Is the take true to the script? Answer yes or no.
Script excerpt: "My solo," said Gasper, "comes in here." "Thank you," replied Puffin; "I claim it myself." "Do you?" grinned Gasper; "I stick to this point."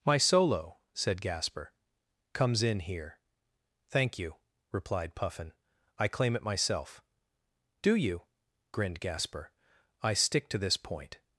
yes